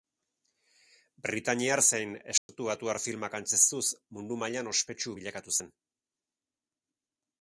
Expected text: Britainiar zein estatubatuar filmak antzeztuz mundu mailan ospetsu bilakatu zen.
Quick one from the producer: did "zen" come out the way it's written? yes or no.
yes